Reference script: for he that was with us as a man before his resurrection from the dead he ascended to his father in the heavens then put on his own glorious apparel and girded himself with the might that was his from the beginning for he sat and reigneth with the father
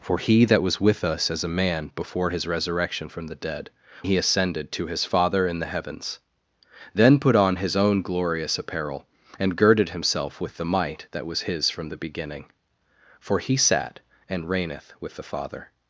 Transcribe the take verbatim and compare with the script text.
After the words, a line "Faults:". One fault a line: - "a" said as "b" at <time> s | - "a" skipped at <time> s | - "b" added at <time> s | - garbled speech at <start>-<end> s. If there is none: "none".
for he that was with us as a man before his resurrection from the dead he ascended to his father in the heavens then put on his own glorious apparel and girded himself with the might that was his from the beginning for he sat and reigneth with the father
Faults:
none